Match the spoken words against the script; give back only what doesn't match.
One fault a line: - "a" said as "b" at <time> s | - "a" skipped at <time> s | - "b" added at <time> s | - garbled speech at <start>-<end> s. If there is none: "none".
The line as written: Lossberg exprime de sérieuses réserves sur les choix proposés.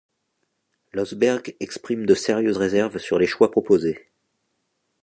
none